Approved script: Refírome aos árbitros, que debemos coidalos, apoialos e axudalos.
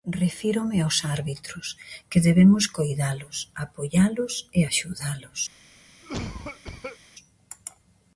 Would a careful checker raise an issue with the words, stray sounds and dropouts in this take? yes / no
yes